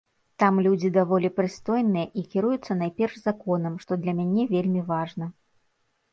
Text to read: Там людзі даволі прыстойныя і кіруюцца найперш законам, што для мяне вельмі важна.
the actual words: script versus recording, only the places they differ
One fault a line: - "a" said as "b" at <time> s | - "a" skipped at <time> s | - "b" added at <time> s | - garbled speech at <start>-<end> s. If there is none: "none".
none